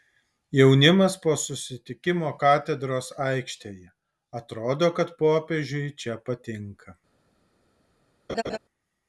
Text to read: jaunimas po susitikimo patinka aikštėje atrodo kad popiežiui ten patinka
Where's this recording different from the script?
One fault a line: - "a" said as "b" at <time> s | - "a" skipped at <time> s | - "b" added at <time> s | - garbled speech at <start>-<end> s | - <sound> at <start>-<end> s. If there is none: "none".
- "patinka" said as "katedros" at 2.4 s
- "ten" said as "čia" at 6.0 s
- laugh at 8.3-8.6 s